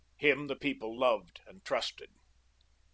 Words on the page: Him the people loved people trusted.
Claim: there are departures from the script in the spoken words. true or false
true